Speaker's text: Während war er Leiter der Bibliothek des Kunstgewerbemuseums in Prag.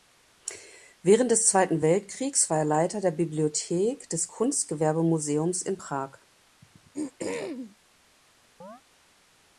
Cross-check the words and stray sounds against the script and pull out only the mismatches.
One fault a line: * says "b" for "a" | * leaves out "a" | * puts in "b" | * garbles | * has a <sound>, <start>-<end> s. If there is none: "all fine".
* puts in "des Zweiten Weltkriegs"
* has a throat clearing, 6.6-7.8 s
* has a chirp, 8.6-8.8 s